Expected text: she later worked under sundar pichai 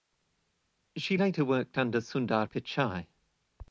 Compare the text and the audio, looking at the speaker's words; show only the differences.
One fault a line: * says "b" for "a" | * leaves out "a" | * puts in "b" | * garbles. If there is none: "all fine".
all fine